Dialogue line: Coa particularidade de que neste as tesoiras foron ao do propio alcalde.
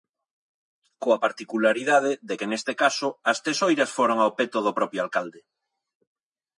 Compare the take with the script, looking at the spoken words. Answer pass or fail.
fail